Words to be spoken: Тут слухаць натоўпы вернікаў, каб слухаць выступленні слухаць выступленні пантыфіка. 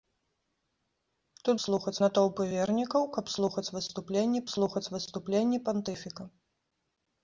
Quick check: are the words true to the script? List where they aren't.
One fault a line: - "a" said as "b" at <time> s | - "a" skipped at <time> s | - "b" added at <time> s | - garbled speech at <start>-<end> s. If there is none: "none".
none